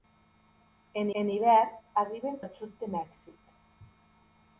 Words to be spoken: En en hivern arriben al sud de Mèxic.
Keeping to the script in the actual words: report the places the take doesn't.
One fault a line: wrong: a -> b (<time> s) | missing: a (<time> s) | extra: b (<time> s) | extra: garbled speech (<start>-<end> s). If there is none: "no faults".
no faults